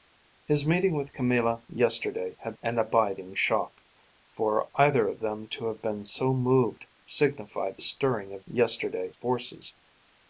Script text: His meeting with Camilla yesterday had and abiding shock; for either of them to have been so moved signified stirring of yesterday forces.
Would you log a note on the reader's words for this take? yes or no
no